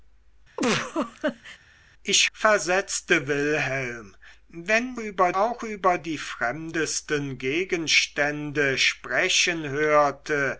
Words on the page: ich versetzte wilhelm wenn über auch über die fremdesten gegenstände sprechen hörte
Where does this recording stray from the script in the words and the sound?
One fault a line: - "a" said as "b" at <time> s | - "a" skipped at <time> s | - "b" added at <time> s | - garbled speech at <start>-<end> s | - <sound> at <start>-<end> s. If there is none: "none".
- laugh at 0.6-1.6 s